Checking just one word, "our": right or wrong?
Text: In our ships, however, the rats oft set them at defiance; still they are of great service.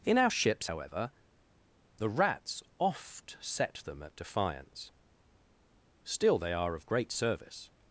right